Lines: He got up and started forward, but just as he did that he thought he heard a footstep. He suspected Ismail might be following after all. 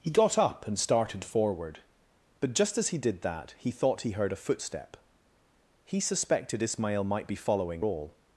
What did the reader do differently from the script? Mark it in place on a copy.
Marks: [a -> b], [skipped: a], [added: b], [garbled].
He got up and started forward, but just as he did that he thought he heard a footstep. He suspected Ismail might be following [skipped: after] all.